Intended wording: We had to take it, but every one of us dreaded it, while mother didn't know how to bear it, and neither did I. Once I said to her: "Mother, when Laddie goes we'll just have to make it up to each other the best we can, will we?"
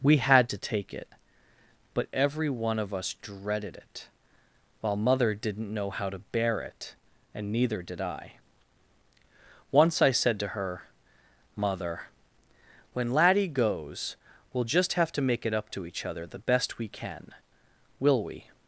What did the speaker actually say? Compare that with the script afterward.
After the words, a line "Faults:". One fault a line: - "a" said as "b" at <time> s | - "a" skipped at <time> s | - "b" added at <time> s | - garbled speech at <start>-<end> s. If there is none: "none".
We had to take it, but every one of us dreaded it, while mother didn't know how to bear it, and neither did I. Once I said to her: "Mother, when Laddie goes we'll just have to make it up to each other the best we can, will we?"
Faults:
none